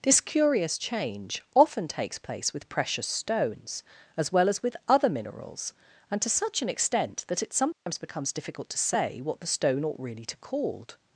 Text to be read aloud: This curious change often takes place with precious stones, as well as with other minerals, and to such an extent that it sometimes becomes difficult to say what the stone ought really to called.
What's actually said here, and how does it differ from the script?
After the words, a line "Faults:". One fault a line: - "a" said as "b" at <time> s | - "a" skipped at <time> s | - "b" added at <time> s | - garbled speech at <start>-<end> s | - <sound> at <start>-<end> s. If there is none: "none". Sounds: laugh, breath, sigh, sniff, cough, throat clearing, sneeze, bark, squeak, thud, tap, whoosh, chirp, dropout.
This curious change often takes place with precious stones, as well as with other minerals, and to such an extent that it sometimes becomes difficult to say what the stone ought really to called.
Faults:
- dropout at 7.7-7.9 s